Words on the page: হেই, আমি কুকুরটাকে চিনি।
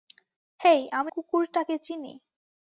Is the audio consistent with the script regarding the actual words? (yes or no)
yes